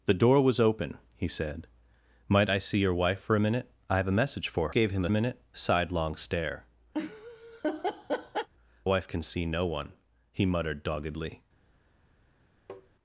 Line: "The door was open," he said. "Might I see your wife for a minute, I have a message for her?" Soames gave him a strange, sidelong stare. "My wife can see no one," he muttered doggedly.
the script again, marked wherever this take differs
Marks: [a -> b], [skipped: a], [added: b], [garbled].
"The door was open," he said. "Might I see your wife for a minute, I have a message for [skipped: her?" Soames] gave him a [strange, -> minute] sidelong stare. [skipped: "My] wife can see no one," he muttered doggedly.